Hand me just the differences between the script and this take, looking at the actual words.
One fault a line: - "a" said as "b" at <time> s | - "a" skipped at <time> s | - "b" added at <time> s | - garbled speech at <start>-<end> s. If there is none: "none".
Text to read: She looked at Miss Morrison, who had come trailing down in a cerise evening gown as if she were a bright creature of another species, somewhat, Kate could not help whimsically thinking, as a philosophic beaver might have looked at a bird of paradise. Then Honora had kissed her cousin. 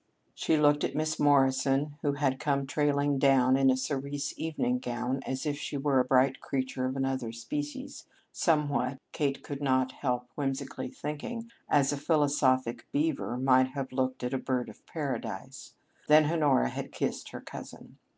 none